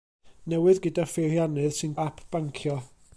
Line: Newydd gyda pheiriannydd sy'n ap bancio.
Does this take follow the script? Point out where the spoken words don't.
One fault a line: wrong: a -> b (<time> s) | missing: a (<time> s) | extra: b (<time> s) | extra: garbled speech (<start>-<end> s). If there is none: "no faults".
no faults